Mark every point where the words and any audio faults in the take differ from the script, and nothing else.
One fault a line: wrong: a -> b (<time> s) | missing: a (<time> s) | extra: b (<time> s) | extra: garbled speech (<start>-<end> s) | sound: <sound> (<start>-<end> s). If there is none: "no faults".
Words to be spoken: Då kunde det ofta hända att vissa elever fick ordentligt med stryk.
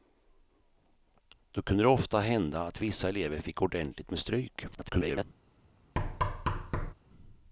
extra: garbled speech (4.7-5.2 s)
sound: thud (6.0-6.9 s)